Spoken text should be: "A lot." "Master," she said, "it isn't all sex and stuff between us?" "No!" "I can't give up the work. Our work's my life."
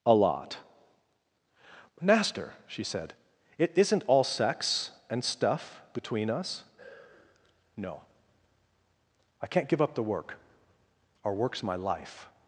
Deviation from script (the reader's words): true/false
false